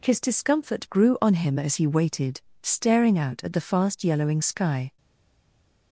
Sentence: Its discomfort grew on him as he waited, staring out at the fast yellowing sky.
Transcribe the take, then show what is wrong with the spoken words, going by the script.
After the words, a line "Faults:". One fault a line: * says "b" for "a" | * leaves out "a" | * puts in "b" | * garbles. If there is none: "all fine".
His discomfort grew on him as he waited, staring out at the fast yellowing sky.
Faults:
* says "His" for "Its"